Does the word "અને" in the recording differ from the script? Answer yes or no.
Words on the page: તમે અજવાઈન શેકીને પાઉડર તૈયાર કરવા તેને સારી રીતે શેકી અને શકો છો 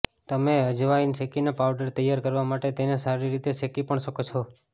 yes